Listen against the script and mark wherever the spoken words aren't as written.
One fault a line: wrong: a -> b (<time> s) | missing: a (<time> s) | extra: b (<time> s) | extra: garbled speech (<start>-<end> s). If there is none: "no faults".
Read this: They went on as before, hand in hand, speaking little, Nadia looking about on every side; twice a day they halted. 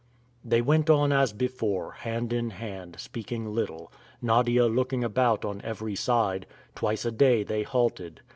no faults